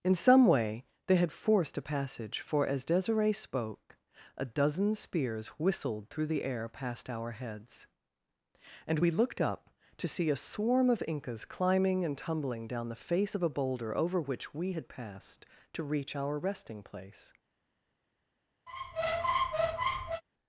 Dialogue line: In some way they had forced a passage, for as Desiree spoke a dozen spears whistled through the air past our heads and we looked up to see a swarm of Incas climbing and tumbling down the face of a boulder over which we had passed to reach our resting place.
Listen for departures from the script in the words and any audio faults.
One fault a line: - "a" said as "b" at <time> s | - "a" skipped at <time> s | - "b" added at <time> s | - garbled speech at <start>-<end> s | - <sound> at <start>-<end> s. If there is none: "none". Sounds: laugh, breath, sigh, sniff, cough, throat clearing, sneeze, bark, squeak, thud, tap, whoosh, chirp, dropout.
- squeak at 18.7-20.2 s